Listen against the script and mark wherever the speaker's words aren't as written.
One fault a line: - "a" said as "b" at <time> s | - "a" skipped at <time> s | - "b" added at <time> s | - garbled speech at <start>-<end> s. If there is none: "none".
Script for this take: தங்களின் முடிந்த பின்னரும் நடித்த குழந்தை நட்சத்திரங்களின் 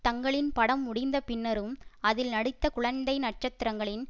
- "படம்" added at 0.5 s
- "அதில்" added at 2.0 s